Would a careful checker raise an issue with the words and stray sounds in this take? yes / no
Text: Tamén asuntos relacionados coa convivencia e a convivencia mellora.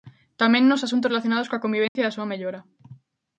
yes